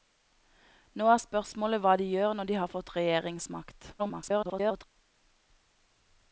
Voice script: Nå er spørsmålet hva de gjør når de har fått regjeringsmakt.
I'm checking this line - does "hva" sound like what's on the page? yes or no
yes